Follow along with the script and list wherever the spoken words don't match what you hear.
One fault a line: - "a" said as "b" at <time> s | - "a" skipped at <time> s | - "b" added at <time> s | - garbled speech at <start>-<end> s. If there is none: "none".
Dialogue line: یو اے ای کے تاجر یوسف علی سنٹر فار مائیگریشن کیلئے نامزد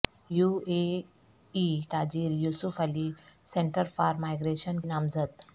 - "کے" skipped at 1.7 s
- "کیلئے" skipped at 4.8 s